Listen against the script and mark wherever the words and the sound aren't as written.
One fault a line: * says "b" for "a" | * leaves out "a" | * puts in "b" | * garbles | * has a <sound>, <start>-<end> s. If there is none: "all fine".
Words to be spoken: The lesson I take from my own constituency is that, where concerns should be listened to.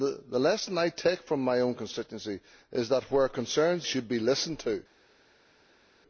all fine